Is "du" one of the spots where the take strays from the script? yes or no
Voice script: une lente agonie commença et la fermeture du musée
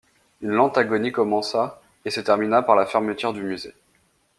no